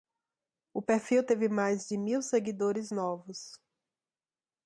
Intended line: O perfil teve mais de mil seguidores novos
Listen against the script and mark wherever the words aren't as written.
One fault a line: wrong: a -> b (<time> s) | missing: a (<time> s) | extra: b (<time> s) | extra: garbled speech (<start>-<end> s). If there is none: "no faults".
no faults